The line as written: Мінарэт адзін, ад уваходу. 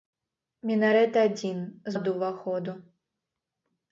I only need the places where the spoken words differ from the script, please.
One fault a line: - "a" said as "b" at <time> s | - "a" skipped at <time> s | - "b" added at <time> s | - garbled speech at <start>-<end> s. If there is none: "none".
none